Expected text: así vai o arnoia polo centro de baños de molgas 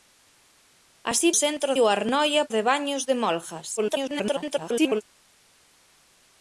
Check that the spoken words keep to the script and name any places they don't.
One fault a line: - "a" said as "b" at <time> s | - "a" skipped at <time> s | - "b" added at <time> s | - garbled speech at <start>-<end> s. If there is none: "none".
- "vai" said as "centro" at 1.4 s
- "polo centro" skipped at 2.4 s
- garbled speech at 3.8-5.0 s